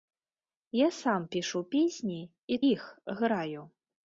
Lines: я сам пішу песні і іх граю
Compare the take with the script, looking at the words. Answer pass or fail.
pass